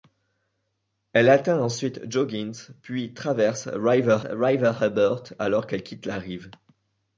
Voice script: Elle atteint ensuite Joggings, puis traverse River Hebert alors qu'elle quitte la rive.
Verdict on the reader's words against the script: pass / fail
fail